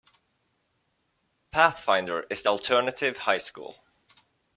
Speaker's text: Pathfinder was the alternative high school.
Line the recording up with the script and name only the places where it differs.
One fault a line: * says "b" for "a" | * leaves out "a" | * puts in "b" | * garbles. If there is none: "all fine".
* says "is" for "was"